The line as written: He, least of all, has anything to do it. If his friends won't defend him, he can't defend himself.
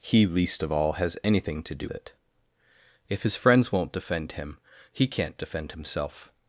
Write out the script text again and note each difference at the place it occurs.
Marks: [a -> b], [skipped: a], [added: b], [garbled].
He, least of all, has anything to do it. If his friends won't defend him, he can't defend himself.